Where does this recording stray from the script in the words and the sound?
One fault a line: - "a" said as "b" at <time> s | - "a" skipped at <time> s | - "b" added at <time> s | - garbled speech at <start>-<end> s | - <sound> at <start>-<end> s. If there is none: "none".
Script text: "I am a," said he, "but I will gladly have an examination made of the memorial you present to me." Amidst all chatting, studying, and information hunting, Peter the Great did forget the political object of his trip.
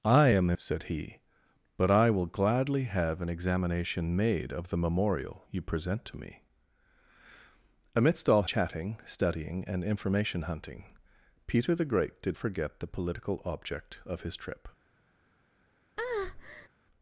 - breath at 16.0-16.7 s